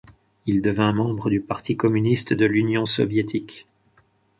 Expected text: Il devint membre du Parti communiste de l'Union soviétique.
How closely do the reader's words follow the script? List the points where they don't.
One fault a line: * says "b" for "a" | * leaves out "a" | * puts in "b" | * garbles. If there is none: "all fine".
all fine